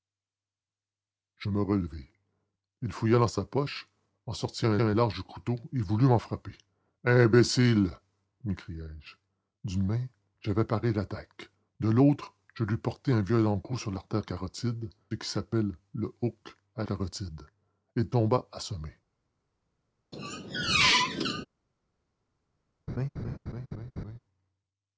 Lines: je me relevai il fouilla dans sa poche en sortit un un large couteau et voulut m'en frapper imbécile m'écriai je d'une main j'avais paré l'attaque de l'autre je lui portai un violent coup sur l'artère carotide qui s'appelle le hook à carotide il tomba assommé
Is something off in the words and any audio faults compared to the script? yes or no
yes